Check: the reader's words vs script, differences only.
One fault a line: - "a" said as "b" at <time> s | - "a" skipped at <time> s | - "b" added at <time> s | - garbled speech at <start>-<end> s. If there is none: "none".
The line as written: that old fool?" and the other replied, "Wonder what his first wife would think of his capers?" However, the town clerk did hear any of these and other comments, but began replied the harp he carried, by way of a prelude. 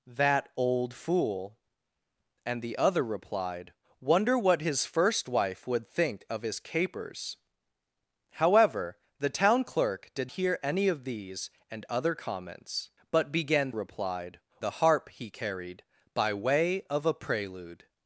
none